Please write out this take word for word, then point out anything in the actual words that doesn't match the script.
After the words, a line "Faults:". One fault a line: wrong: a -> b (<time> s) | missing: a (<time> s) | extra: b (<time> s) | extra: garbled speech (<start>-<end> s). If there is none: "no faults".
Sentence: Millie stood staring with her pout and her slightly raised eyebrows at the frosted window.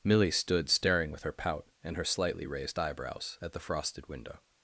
Millie stood staring with her pout and her slightly raised eyebrows at the frosted window.
Faults:
no faults